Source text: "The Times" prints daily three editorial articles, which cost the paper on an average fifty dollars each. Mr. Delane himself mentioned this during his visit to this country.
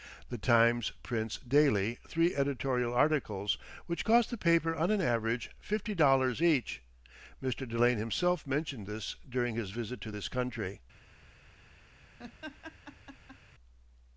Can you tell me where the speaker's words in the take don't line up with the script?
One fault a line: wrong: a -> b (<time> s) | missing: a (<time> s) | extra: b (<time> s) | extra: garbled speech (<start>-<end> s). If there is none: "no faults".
no faults